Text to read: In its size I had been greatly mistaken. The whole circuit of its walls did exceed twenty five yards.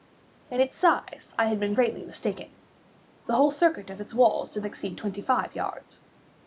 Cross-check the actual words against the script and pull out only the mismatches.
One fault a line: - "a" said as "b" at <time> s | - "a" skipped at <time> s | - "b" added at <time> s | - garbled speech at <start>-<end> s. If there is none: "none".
none